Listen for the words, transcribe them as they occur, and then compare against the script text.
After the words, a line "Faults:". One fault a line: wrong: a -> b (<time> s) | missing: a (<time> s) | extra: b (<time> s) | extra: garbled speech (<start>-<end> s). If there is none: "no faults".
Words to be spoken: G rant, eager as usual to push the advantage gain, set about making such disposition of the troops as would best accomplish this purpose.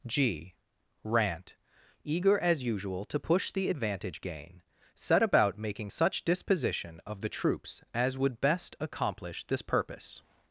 G rant, eager as usual to push the advantage gain, set about making such disposition of the troops as would best accomplish this purpose.
Faults:
no faults